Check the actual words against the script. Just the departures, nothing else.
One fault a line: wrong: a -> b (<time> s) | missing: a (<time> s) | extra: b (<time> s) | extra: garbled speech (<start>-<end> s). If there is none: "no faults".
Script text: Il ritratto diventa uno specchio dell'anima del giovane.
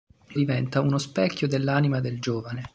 missing: ritratto (0.4 s)